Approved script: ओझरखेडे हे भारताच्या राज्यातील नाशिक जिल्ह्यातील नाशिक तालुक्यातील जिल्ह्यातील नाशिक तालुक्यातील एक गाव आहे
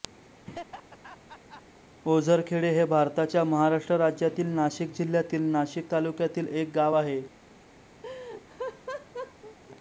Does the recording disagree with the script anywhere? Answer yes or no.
yes